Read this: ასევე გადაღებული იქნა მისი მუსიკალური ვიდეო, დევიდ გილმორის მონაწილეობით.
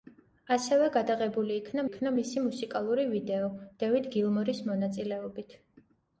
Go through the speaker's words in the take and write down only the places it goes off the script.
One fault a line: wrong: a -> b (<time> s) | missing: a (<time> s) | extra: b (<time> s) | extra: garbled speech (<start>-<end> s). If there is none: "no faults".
extra: იქნა (1.9 s)